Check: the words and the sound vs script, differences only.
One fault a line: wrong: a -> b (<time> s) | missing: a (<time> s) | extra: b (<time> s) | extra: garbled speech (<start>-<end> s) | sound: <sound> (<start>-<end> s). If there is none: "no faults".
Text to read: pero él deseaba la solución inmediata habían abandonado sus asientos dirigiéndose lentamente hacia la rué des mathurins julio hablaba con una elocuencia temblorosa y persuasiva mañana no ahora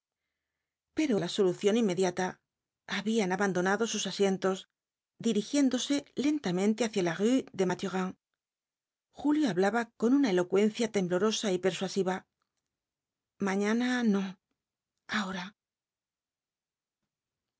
missing: él deseaba (1.2 s)